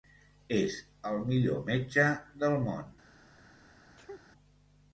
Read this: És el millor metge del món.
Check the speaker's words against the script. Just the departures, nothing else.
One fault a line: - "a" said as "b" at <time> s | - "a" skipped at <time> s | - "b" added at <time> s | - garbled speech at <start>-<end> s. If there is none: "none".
none